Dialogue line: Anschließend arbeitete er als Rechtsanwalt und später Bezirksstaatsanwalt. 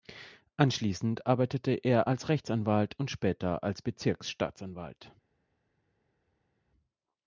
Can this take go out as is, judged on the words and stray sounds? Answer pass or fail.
fail